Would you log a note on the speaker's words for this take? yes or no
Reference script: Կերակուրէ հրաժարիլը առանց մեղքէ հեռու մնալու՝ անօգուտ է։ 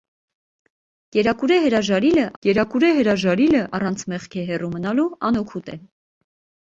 yes